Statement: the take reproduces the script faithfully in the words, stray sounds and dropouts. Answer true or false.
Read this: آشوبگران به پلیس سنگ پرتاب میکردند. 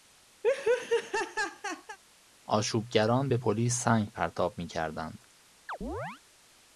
false